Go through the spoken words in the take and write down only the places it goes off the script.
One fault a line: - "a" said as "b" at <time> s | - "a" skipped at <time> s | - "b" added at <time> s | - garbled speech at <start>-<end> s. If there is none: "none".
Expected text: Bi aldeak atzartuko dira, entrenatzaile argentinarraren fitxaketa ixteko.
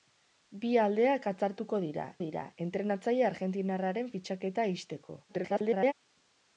- "dira" added at 2.2 s
- garbled speech at 5.3-5.9 s